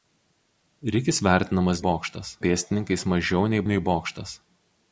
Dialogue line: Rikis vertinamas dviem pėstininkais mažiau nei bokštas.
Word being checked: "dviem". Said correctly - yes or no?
no